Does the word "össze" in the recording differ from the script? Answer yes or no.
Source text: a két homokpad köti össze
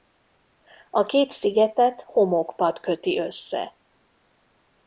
no